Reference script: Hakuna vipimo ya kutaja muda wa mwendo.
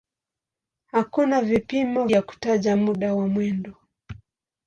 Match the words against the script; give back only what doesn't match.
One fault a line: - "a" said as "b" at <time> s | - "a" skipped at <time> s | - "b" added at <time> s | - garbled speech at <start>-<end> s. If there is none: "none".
none